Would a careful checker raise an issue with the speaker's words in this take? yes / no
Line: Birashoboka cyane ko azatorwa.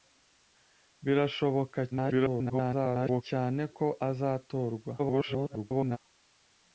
yes